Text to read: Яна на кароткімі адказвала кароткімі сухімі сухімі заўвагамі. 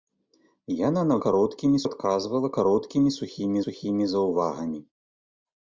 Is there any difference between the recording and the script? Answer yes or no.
no